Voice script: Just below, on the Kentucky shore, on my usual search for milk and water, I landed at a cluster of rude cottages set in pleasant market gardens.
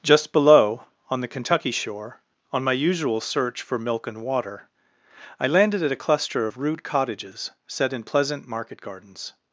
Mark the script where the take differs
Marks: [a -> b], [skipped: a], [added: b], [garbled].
Just below, on the Kentucky shore, on my usual search for milk and water, I landed at a cluster of rude cottages set in pleasant market gardens.